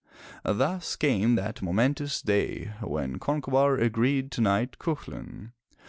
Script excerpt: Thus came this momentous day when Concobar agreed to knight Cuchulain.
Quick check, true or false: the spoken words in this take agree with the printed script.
false